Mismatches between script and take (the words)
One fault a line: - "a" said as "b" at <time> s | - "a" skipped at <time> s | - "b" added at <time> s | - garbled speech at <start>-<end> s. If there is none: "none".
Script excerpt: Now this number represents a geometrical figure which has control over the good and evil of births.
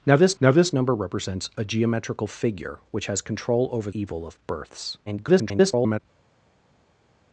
- "now this" added at 0.4 s
- "the good and" skipped at 3.9 s
- garbled speech at 5.1-6.0 s